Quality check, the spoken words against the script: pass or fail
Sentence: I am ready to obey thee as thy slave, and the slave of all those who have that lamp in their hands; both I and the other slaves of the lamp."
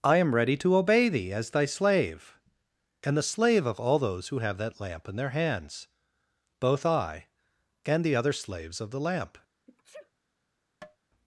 pass